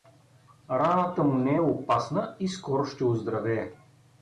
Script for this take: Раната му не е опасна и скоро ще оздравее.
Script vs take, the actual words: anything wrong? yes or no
no